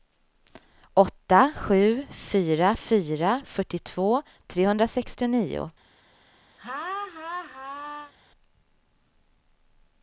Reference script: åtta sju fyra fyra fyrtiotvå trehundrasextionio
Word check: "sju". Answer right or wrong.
right